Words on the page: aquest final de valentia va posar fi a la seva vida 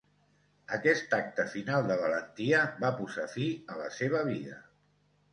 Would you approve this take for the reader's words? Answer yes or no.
no